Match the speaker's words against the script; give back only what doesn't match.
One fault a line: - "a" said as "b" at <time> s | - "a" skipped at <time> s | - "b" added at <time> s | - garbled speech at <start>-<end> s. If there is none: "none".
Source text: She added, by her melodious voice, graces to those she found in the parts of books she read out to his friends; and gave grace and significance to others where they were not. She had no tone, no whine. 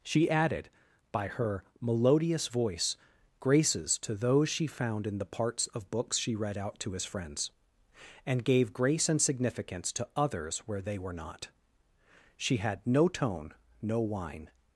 none